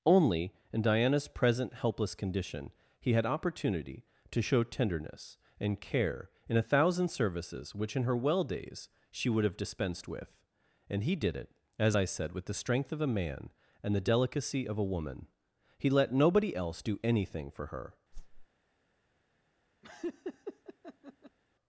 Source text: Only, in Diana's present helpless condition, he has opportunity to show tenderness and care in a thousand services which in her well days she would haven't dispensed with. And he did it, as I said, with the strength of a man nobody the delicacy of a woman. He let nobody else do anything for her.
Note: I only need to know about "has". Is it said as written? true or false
false